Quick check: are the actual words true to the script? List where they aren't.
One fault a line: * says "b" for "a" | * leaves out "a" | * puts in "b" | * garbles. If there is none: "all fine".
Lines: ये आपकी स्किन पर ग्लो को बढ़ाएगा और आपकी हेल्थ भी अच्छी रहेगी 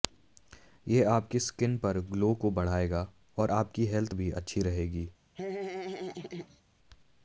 all fine